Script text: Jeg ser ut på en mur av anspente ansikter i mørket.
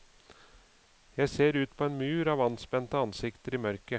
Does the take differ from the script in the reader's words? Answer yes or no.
no